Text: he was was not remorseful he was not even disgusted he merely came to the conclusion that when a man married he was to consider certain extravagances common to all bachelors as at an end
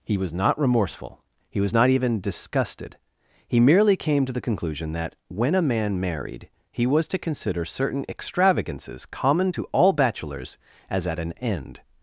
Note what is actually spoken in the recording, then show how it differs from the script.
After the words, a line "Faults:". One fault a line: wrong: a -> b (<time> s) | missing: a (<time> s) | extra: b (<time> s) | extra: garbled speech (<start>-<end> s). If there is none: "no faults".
he was not remorseful he was not even disgusted he merely came to the conclusion that when a man married he was to consider certain extravagances common to all bachelors as at an end
Faults:
missing: was (0.3 s)